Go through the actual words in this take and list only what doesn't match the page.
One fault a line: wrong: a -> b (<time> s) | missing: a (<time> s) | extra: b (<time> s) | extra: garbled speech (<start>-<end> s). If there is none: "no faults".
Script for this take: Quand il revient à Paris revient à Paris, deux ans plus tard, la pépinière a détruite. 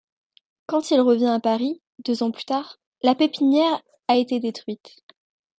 missing: revient à Paris (1.8 s)
extra: été (4.1 s)